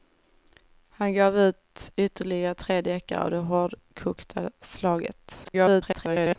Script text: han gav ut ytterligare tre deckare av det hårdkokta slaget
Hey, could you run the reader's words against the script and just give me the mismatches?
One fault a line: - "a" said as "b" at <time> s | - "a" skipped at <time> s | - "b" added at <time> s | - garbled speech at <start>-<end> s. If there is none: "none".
- garbled speech at 5.4-6.4 s